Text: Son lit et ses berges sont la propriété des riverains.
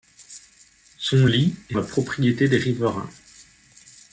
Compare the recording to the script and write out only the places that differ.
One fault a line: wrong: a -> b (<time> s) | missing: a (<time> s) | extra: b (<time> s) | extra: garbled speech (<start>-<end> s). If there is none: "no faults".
missing: ses berges sont (1.8 s)